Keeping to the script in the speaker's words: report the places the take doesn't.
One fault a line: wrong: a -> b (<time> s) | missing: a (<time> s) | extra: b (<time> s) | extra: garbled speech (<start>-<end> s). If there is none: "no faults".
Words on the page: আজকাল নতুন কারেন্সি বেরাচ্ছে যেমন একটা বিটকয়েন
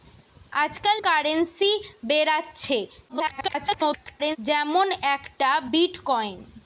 missing: নতুন (1.0 s)
extra: garbled speech (3.1-4.4 s)